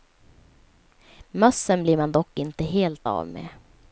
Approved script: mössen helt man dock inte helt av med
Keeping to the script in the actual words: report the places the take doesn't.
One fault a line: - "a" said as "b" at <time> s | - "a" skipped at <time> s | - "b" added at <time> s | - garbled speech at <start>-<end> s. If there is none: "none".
- "helt" said as "blir" at 1.8 s